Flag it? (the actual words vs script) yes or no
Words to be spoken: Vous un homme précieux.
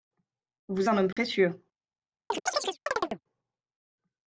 no